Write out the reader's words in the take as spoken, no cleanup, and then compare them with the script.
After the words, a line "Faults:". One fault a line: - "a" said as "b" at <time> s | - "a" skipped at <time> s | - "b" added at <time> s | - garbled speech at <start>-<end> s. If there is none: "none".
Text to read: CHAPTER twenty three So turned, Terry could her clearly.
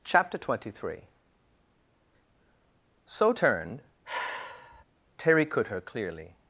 CHAPTER twenty three So turned, Terry could her clearly.
Faults:
none